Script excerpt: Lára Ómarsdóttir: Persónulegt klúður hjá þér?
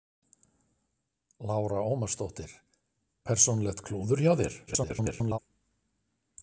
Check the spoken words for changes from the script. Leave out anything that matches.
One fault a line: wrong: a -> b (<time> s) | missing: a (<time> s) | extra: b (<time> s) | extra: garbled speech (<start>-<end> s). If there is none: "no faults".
extra: garbled speech (4.7-5.4 s)